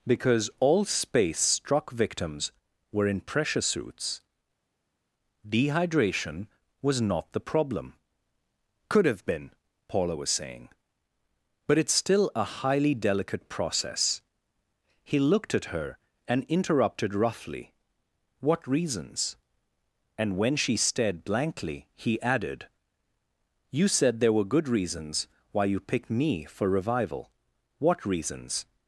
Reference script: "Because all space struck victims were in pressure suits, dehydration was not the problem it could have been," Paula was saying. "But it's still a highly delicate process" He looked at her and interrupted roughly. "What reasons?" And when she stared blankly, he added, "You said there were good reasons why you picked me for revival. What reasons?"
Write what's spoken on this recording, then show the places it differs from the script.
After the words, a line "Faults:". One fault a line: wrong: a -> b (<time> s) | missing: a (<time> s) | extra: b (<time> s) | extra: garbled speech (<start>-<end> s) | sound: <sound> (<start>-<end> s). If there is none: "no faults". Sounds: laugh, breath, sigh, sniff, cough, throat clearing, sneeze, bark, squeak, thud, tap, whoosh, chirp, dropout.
"Because all space struck victims were in pressure suits, dehydration was not the problem could have been," Paula was saying. "But it's still a highly delicate process" He looked at her and interrupted roughly. "What reasons?" And when she stared blankly, he added, "You said there were good reasons why you picked me for revival. What reasons?"
Faults:
missing: it (7.9 s)